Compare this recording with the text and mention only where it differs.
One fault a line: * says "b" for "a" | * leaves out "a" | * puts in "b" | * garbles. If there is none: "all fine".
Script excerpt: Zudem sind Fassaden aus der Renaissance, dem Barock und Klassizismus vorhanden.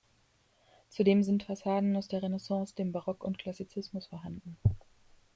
all fine